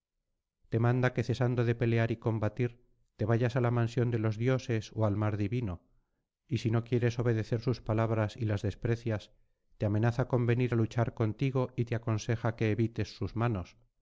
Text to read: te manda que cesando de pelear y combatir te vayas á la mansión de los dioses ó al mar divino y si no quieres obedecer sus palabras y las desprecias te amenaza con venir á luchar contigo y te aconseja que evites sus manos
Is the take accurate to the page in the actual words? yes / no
yes